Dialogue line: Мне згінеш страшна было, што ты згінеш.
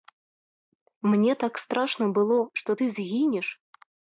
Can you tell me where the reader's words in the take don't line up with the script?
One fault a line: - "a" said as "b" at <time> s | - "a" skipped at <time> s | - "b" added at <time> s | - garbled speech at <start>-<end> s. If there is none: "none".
- "згінеш" said as "так" at 1.4 s